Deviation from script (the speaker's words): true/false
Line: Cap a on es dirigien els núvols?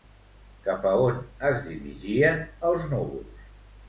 false